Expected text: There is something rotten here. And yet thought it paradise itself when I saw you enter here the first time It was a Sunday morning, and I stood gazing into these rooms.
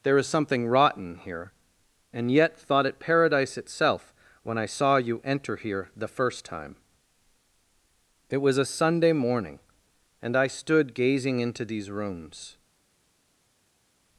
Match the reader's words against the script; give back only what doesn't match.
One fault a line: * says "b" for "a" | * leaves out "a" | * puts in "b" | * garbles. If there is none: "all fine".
all fine